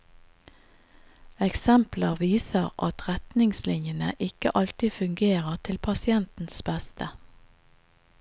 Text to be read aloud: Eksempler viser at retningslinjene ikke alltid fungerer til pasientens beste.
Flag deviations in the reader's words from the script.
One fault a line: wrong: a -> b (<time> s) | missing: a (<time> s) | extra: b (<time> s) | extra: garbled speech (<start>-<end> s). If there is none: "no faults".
no faults